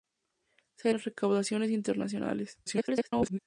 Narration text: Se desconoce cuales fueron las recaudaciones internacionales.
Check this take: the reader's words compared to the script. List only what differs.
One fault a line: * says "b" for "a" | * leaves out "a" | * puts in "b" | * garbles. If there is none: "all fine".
* leaves out "desconoce cuales fueron"
* garbles